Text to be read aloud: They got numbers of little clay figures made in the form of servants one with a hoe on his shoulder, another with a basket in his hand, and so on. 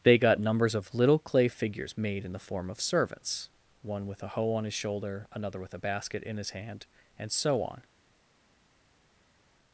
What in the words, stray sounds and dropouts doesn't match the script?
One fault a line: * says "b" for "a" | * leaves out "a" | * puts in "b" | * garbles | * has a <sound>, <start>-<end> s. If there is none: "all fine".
all fine